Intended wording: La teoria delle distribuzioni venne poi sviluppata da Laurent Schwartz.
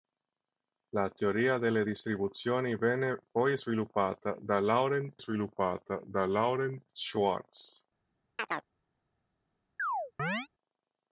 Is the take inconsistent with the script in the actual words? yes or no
yes